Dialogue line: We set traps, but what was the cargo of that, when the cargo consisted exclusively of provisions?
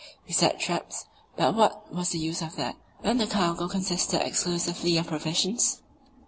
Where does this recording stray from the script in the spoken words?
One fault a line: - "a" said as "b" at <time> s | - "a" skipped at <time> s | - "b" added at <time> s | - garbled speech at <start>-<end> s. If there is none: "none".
- "cargo" said as "use" at 2.2 s